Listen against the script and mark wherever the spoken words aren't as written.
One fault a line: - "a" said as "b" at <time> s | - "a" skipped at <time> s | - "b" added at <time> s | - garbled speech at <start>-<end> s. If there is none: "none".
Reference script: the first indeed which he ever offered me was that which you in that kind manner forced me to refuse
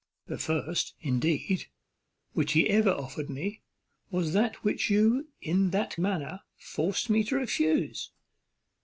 - "kind" skipped at 6.0 s